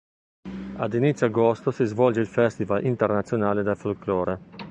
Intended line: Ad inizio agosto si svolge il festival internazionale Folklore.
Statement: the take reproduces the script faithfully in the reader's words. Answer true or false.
false